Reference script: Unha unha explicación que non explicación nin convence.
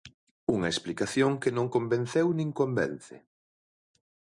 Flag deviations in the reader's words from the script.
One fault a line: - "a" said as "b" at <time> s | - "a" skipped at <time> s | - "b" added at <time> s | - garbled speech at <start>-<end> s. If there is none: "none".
- "unha" skipped at 0.7 s
- "explicación" said as "convenceu" at 1.7 s